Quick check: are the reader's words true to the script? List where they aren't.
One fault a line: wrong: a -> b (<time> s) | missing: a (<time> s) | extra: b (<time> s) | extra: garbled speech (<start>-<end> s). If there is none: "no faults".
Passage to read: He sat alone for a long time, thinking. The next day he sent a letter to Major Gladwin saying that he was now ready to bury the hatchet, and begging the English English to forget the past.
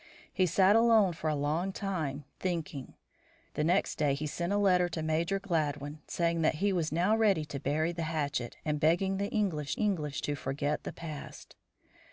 no faults